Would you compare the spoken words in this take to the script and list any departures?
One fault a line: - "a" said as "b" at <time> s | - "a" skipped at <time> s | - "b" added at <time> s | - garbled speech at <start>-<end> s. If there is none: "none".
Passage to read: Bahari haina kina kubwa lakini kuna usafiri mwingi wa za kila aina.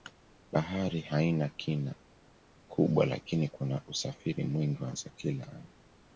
none